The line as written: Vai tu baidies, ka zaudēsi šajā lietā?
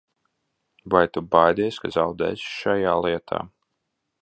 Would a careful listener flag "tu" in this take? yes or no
no